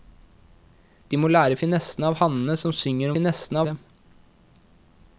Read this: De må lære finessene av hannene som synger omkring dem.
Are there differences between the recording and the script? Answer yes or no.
yes